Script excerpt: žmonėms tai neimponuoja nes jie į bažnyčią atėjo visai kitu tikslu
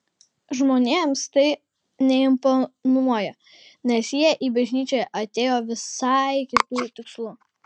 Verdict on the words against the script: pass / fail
pass